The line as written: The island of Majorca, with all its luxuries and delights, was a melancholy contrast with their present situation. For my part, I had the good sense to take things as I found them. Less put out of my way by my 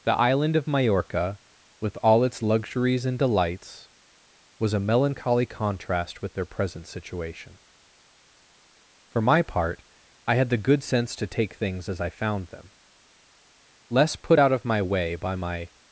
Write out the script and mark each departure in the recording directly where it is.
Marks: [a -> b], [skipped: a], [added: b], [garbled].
The island of Majorca, with all its luxuries and delights, was a melancholy contrast with their present situation. For my part, I had the good sense to take things as I found them. Less put out of my way by my